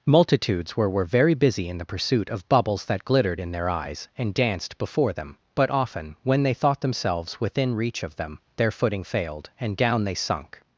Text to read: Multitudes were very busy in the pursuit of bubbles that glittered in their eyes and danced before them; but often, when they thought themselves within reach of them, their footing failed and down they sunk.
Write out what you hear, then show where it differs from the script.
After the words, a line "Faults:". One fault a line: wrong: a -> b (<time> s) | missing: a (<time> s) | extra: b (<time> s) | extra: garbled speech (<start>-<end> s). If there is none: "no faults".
Multitudes were were very busy in the pursuit of bubbles that glittered in their eyes and danced before them; but often, when they thought themselves within reach of them, their footing failed and down they sunk.
Faults:
extra: were (0.9 s)